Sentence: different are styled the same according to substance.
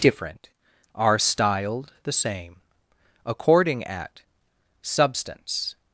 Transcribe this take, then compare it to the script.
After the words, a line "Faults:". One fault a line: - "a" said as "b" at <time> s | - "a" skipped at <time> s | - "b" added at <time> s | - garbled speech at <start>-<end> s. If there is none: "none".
different are styled the same according at substance.
Faults:
- "to" said as "at" at 3.8 s